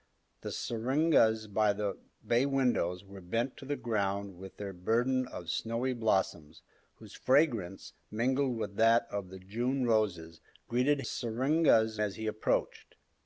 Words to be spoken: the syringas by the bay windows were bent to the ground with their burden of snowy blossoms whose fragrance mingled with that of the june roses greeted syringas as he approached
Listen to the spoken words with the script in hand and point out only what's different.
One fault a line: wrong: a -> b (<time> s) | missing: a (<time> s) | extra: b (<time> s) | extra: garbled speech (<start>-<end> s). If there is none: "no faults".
no faults